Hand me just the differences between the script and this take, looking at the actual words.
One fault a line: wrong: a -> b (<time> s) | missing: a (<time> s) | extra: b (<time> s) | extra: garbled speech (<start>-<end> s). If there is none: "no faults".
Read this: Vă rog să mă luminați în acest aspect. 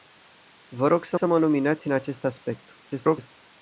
extra: să (1.1 s)
extra: garbled speech (2.8-3.3 s)